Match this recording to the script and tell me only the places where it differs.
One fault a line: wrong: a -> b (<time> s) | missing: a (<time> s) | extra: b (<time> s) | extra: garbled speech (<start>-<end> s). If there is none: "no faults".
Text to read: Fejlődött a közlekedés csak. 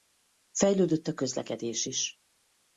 wrong: csak -> is (1.8 s)